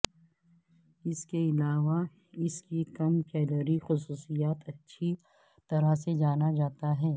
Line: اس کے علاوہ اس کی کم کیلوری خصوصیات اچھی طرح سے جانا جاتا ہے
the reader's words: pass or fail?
pass